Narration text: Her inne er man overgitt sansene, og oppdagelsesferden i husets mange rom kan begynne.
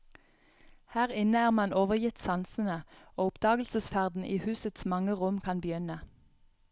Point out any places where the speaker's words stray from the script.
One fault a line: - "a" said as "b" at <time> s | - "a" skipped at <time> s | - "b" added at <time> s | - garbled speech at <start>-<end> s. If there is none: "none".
none